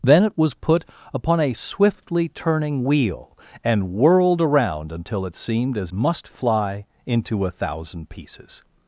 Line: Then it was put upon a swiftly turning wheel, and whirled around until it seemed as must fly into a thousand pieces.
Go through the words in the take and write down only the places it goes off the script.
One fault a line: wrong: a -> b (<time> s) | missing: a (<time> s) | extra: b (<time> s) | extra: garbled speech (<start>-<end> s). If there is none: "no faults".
no faults